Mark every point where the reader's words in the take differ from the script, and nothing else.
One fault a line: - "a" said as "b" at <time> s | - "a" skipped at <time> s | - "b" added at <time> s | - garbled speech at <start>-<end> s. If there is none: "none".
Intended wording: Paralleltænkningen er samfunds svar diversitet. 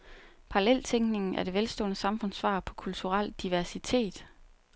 - "det velstående" added at 1.4 s
- "på kulturel" added at 2.6 s